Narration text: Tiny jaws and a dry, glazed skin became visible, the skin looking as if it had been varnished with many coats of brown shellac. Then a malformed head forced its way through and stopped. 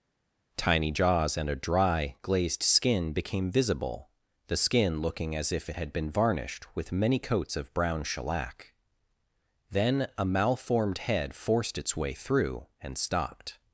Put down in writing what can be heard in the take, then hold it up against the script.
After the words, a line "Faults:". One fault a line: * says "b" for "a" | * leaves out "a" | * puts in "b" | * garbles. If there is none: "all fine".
Tiny jaws and a dry, glazed skin became visible, the skin looking as if it had been varnished with many coats of brown shellac. Then a malformed head forced its way through and stopped.
Faults:
all fine